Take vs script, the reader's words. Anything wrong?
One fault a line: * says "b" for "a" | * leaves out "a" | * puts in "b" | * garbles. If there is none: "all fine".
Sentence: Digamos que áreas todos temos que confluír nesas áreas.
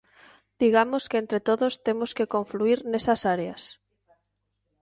* says "entre" for "áreas"